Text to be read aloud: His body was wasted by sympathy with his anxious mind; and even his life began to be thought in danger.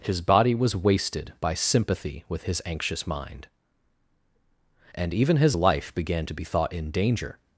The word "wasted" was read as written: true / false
true